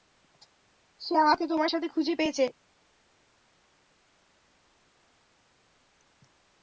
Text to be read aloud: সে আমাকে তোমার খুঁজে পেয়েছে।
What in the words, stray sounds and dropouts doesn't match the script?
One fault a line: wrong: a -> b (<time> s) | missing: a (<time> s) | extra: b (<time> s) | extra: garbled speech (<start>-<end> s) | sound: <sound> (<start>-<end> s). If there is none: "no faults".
extra: সাথে (1.7 s)